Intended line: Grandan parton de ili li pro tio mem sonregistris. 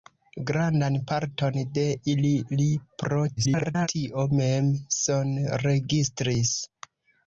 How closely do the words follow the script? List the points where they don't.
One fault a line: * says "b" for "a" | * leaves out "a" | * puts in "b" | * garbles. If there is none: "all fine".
* garbles